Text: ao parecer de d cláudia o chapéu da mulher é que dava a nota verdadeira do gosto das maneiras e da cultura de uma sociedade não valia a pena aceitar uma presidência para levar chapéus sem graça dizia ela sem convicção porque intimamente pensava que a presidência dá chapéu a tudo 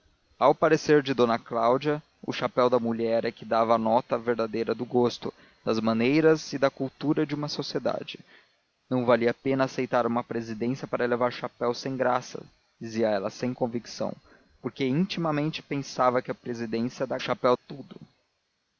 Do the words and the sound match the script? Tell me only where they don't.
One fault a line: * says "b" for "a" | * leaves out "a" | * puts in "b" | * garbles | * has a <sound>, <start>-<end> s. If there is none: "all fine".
all fine